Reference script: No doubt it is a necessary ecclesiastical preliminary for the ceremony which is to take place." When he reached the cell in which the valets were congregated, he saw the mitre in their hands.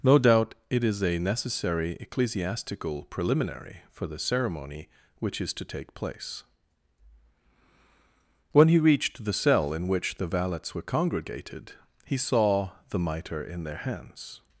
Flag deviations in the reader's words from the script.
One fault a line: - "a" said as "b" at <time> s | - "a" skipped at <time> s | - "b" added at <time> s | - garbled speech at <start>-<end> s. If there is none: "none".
none